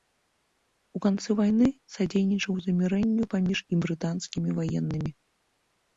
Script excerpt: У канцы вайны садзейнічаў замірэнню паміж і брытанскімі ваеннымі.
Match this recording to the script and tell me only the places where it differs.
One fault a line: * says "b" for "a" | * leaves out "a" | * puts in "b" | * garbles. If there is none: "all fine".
all fine